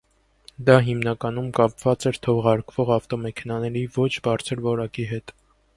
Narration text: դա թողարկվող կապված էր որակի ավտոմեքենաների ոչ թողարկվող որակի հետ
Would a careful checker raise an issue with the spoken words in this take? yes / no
yes